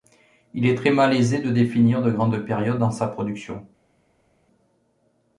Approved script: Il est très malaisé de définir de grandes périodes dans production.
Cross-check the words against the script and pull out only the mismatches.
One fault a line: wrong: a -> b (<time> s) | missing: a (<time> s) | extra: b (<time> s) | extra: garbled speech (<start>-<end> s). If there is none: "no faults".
extra: sa (2.9 s)